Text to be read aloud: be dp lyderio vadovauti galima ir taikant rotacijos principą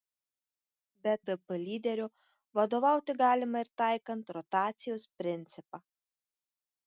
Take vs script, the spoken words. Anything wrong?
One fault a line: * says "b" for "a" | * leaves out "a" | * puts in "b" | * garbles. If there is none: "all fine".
all fine